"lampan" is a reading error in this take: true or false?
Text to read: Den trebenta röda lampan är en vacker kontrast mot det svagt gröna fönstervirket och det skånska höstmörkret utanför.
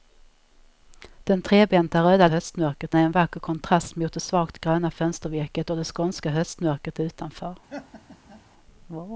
true